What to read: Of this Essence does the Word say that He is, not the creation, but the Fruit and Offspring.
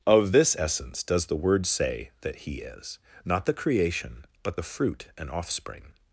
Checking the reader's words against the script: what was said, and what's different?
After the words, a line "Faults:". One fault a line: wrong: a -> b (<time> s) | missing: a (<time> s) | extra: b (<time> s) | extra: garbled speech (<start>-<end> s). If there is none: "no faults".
Of this Essence does the Word say that He is, not the creation, but the Fruit and Offspring.
Faults:
no faults